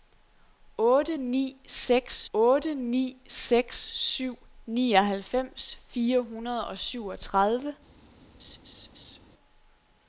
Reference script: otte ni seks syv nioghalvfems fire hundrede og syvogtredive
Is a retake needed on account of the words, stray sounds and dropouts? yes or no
yes